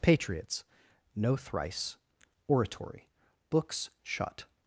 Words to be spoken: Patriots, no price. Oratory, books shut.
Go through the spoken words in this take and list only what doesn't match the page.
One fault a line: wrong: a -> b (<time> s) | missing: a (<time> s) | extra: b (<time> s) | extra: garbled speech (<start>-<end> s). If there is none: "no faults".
wrong: price -> thrice (1.4 s)